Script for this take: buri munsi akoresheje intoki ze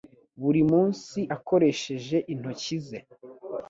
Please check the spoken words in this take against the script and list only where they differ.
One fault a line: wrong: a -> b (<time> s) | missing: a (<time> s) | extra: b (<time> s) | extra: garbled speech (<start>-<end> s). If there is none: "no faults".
no faults